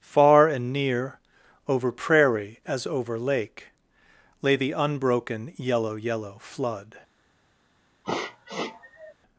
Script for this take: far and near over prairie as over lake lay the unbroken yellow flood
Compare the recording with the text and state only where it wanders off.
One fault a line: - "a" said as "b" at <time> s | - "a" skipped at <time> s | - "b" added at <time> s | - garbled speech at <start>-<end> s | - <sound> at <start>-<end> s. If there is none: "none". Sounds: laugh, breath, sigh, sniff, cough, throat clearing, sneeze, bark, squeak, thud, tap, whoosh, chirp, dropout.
- "yellow" added at 5.9 s
- sniff at 8.0-9.1 s